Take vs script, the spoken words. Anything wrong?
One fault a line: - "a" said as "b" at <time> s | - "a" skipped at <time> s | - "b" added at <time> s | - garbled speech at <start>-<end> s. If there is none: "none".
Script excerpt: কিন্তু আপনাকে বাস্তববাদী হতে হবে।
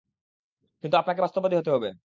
none